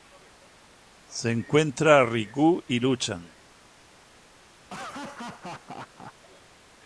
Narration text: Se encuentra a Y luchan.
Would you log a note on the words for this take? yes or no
yes